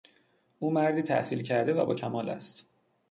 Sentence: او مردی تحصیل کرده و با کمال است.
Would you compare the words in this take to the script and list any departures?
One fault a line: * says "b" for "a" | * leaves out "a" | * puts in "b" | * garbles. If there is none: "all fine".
all fine